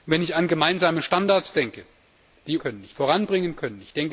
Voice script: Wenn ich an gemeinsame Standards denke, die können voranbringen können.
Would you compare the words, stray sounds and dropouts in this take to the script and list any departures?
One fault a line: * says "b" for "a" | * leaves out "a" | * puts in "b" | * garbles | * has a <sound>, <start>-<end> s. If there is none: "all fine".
all fine